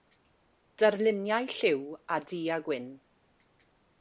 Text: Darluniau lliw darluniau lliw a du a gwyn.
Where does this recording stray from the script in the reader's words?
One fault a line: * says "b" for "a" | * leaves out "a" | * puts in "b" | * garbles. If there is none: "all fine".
* leaves out "darluniau lliw"